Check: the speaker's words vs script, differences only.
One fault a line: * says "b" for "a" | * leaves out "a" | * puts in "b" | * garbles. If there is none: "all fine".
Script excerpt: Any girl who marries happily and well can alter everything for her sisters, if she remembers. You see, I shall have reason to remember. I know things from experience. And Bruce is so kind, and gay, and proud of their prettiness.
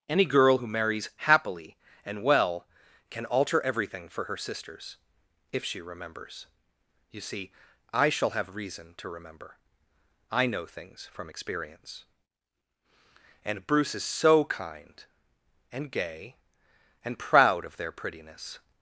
all fine